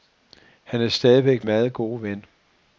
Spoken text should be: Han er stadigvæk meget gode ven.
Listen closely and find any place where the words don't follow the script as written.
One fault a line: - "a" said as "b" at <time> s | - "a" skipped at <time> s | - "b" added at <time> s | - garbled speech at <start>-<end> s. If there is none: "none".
none